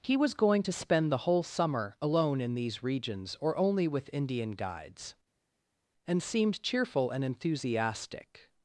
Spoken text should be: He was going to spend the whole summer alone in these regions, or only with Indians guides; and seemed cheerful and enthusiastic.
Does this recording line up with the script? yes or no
no